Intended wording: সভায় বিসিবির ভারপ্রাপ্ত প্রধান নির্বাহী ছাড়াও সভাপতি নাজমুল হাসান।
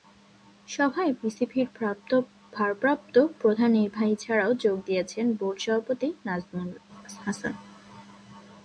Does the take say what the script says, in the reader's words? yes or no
no